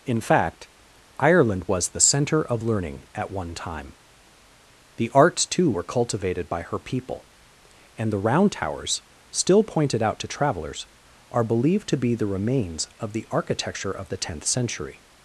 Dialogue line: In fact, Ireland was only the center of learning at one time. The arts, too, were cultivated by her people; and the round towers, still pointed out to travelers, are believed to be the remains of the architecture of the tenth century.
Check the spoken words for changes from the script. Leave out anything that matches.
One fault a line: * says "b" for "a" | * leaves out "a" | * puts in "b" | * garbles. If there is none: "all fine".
* leaves out "only"